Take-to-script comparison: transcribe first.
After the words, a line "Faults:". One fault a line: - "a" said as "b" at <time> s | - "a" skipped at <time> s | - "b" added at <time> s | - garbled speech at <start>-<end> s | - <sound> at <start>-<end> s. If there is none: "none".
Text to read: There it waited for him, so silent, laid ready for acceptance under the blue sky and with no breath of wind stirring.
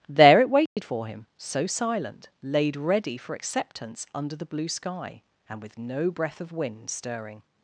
There it waited for him, so silent, laid ready for acceptance under the blue sky and with no breath of wind stirring.
Faults:
- dropout at 0.7-0.8 s